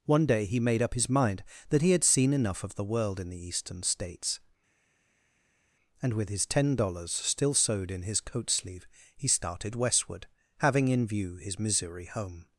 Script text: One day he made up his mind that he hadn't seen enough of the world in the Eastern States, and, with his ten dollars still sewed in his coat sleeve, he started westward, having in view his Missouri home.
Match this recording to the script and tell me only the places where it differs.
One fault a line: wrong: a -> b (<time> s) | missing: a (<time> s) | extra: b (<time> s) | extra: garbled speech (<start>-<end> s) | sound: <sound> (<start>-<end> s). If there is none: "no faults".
wrong: hadn't -> had (1.9 s)